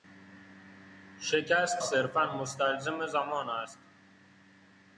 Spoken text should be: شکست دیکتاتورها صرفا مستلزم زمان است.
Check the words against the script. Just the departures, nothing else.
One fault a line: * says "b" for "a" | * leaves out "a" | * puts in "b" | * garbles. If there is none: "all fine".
* leaves out "دیکتاتورها"